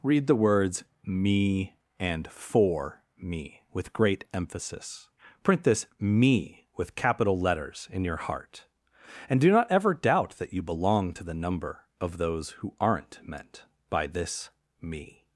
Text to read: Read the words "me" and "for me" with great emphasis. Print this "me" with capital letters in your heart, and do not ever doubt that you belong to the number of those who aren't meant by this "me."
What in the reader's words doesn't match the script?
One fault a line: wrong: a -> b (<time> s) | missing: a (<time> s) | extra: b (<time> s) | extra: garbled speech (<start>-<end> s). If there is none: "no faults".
no faults